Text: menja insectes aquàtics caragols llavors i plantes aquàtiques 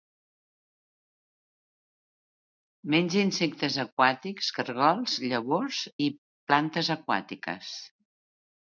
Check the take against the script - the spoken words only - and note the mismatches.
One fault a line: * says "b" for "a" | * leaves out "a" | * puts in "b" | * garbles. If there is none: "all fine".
all fine